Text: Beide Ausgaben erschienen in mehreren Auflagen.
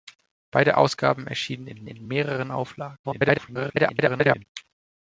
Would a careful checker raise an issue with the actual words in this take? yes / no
yes